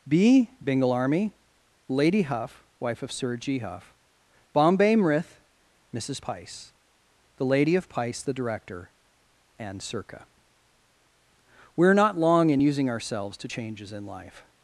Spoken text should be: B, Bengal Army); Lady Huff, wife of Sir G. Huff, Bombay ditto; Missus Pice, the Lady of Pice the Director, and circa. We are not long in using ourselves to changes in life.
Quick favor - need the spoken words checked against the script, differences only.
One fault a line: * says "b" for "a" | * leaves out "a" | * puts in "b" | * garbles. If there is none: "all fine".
* says "mrith" for "ditto"